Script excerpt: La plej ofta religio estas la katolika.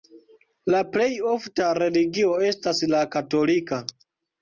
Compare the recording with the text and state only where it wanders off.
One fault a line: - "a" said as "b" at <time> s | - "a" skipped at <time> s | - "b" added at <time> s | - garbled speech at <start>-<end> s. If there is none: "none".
none